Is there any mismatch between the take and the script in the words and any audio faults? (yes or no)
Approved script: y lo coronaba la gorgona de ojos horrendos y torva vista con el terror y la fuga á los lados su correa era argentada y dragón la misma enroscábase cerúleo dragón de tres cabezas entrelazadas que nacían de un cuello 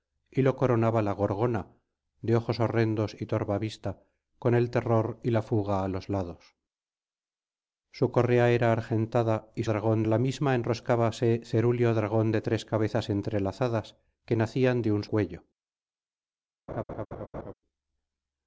yes